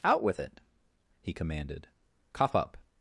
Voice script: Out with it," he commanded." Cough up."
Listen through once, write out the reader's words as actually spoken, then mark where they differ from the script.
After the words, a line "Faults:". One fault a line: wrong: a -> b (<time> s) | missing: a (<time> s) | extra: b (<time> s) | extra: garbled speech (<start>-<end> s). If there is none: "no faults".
Out with it," he commanded." Cough up."
Faults:
no faults